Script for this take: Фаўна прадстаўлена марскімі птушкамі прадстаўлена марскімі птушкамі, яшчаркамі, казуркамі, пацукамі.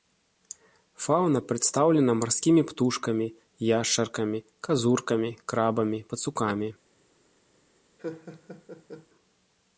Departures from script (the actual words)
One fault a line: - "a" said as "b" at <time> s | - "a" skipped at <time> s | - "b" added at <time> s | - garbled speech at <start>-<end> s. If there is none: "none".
- "прадстаўлена марскімі птушкамі" skipped at 3.3 s
- "крабамі" added at 5.5 s